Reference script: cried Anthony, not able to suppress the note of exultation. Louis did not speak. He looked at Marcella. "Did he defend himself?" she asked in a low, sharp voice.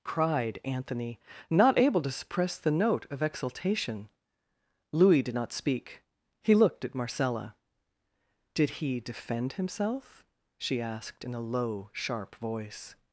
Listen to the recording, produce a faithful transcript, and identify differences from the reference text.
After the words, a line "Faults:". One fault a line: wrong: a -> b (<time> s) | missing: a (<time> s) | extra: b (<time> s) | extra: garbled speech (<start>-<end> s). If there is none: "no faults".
cried Anthony, not able to suppress the note of exultation. Louis did not speak. He looked at Marcella. "Did he defend himself?" she asked in a low, sharp voice.
Faults:
no faults